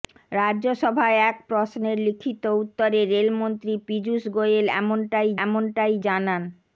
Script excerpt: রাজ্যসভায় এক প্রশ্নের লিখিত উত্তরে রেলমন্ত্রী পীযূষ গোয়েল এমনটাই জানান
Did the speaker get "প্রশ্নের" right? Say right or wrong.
right